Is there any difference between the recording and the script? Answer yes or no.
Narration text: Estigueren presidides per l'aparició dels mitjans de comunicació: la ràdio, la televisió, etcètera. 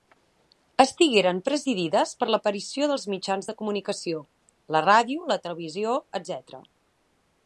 no